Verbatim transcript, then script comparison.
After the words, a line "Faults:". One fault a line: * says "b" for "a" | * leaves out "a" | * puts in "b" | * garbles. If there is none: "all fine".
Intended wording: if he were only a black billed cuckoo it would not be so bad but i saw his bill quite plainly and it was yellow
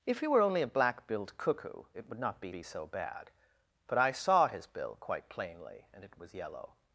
if he were only a black billed cuckoo it would not be be so bad but i saw his bill quite plainly and it was yellow
Faults:
* puts in "be"